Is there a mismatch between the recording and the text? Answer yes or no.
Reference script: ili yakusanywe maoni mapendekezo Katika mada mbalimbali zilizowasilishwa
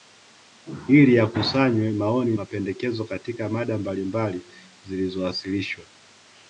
no